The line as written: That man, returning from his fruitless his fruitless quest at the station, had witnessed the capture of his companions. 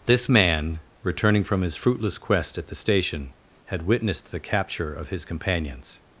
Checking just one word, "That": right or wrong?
wrong